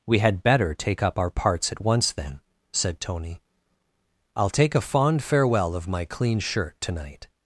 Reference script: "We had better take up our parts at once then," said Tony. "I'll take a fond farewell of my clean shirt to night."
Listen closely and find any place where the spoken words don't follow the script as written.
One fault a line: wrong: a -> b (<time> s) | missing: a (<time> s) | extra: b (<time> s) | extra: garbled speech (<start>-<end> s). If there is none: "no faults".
no faults